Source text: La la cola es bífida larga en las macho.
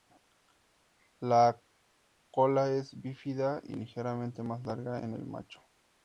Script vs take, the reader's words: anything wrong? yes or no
yes